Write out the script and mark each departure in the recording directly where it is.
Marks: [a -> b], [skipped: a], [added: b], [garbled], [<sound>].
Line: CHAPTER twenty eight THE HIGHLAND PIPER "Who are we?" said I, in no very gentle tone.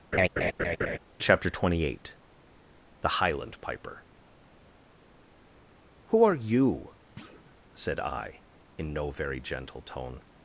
[laugh] CHAPTER twenty eight THE HIGHLAND PIPER "Who are [we?" -> you] [thud] said I, in no very gentle tone.